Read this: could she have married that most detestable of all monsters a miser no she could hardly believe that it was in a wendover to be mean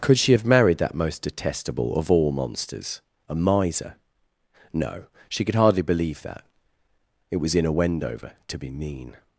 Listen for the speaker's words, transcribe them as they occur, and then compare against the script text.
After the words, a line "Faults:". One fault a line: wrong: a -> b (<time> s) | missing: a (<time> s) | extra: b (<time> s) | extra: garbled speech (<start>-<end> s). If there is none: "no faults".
could she have married that most detestable of all monsters a miser no she could hardly believe that it was in a wendover to be mean
Faults:
no faults